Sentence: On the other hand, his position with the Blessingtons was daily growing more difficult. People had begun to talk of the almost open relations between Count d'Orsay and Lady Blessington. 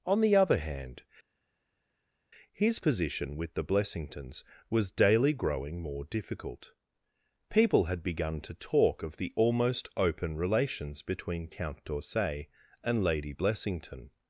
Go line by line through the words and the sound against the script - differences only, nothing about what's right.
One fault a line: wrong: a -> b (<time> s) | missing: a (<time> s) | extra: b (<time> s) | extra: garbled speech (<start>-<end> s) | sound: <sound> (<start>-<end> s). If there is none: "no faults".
no faults